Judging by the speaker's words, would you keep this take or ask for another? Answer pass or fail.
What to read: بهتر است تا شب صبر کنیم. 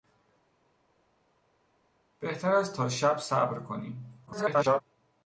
fail